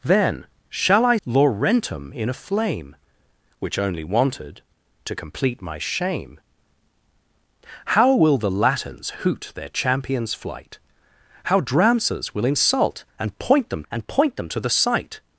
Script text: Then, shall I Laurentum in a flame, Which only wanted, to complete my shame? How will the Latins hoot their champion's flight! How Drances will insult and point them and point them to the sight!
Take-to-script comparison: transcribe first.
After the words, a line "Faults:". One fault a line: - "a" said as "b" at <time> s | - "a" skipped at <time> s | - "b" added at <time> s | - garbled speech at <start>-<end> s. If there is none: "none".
Then, shall I Laurentum in a flame, Which only wanted, to complete my shame? How will the Latins hoot their champion's flight! How Drances will insult and point them and point them to the sight!
Faults:
none